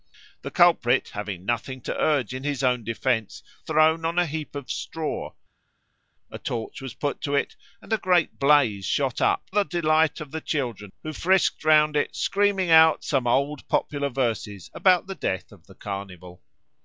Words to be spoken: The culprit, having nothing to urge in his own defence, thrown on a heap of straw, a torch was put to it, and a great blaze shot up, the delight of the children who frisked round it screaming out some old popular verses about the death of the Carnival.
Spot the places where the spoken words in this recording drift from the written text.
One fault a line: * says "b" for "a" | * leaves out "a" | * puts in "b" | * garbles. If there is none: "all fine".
all fine